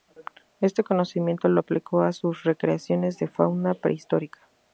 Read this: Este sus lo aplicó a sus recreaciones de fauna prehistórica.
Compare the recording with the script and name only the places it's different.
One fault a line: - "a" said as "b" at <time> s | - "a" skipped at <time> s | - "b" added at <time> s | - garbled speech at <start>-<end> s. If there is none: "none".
- "sus" said as "conocimiento" at 0.8 s